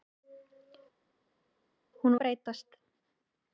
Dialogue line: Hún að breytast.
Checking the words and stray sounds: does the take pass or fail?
pass